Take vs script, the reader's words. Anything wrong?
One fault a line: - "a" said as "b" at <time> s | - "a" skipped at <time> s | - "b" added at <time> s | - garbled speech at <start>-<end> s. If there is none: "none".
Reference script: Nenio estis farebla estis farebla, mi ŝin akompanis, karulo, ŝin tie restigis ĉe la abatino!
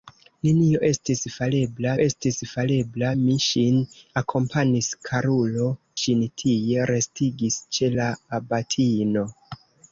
none